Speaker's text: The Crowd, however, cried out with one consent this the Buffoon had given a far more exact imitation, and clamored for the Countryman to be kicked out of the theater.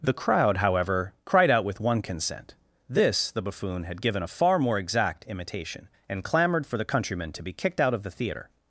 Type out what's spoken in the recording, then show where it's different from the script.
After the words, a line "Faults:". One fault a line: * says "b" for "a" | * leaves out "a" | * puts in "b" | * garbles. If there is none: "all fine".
The Crowd, however, cried out with one consent this the Buffoon had given a far more exact imitation, and clamored for the Countryman to be kicked out of the theater.
Faults:
all fine